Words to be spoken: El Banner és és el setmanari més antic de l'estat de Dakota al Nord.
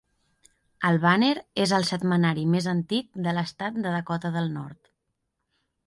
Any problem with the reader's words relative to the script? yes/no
yes